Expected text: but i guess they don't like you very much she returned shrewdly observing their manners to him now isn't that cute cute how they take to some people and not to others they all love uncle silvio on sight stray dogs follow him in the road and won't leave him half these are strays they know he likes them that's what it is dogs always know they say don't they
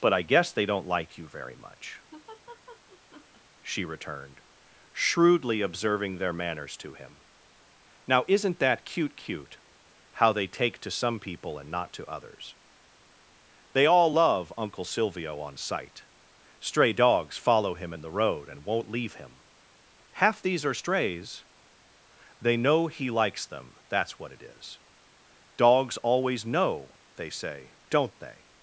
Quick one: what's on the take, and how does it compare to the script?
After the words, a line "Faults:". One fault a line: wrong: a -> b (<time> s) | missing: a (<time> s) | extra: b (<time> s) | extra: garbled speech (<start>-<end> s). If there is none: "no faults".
but i guess they don't like you very much she returned shrewdly observing their manners to him now isn't that cute cute how they take to some people and not to others they all love uncle silvio on sight stray dogs follow him in the road and won't leave him half these are strays they know he likes them that's what it is dogs always know they say don't they
Faults:
no faults